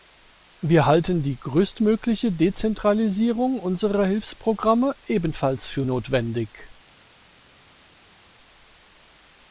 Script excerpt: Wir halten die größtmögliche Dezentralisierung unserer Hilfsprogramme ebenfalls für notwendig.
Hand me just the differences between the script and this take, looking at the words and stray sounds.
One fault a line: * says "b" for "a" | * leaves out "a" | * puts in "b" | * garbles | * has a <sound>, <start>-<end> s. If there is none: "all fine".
all fine